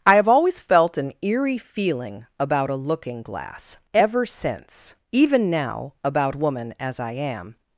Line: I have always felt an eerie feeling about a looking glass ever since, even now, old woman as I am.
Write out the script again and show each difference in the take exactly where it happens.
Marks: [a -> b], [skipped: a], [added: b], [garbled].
I have always felt an eerie feeling about a looking glass ever since, even now, [old -> about] woman as I am.